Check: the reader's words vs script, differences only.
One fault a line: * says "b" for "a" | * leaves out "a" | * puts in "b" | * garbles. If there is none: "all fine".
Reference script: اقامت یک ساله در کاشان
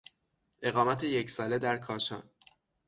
all fine